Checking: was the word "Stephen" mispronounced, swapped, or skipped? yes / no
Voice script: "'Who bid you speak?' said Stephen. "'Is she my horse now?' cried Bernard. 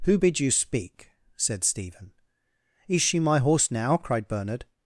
no